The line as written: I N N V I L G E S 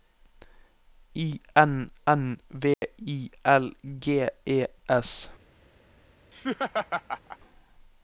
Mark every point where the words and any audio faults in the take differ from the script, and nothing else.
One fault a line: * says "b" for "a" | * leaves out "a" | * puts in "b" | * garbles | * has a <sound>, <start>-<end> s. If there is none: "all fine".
* has a dropout, 2.7-2.8 s
* has a laugh, 6.3-7.4 s